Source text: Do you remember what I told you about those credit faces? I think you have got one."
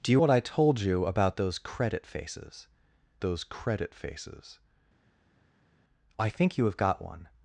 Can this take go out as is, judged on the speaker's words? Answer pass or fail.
fail